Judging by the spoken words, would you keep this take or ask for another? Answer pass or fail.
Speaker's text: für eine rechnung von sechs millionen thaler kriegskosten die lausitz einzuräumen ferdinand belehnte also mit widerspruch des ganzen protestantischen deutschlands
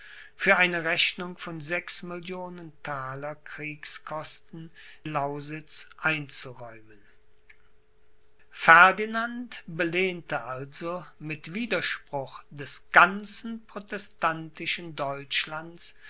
fail